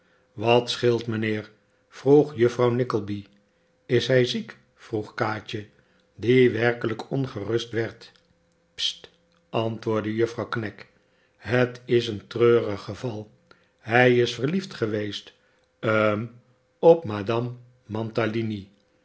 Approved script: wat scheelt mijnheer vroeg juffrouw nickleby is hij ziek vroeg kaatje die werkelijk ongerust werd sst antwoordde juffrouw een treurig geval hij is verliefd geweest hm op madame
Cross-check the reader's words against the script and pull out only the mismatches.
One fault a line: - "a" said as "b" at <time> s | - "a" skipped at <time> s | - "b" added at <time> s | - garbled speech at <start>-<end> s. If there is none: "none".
- "knag het is" added at 10.5 s